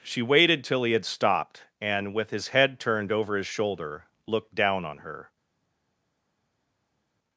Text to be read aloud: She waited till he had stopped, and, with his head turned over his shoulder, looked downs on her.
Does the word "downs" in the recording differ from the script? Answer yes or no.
yes